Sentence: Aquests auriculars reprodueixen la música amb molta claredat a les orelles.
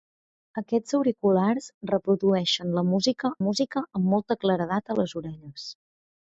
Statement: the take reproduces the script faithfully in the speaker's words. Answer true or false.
false